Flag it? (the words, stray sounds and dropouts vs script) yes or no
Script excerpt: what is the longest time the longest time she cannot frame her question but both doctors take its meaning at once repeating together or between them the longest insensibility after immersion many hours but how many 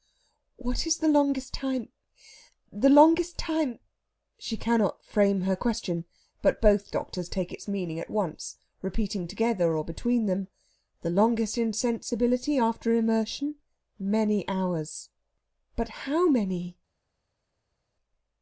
no